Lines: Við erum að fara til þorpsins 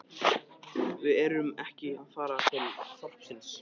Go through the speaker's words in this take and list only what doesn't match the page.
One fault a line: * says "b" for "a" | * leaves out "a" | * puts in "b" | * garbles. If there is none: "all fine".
* puts in "ekki"